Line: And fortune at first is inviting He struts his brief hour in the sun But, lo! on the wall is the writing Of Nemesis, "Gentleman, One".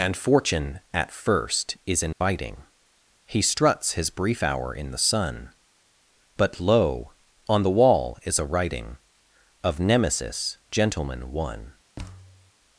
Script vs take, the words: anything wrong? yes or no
yes